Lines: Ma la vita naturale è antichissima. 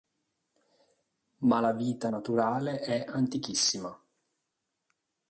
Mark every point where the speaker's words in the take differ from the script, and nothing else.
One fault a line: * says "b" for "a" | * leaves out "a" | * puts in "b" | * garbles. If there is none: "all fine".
all fine